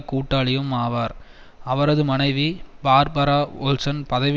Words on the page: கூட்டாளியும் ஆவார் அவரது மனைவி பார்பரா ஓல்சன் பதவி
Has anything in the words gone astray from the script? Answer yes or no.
no